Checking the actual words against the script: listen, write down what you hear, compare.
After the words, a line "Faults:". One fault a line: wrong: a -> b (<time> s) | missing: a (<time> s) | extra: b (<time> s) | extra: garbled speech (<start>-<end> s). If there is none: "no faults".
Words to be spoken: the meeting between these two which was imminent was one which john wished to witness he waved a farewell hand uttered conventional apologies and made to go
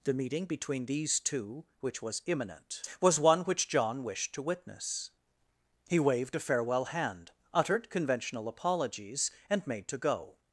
the meeting between these two which was imminent was one which john wished to witness he waved a farewell hand uttered conventional apologies and made to go
Faults:
no faults